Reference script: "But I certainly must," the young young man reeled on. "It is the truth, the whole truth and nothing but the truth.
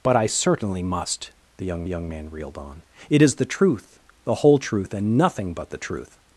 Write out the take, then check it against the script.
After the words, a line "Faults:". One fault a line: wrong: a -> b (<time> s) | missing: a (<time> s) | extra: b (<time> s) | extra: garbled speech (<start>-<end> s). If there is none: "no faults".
"But I certainly must," the young young man reeled on. "It is the truth, the whole truth and nothing but the truth.
Faults:
no faults